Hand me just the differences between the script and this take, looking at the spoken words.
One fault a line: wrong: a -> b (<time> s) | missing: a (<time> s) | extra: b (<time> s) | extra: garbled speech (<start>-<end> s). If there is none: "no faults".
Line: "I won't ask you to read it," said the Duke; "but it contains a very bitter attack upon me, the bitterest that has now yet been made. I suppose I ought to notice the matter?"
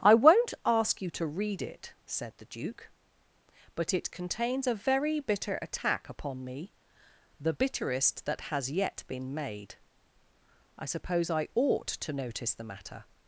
missing: now (8.7 s)